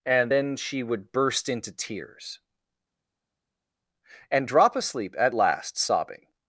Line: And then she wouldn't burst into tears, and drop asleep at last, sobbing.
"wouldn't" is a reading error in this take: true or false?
true